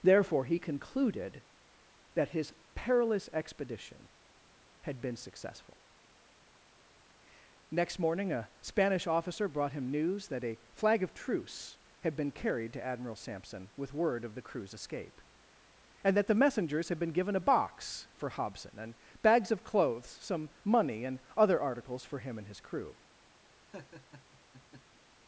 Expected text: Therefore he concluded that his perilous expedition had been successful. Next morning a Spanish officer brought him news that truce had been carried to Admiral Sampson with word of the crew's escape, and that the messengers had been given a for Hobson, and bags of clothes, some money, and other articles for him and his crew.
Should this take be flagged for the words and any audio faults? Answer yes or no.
yes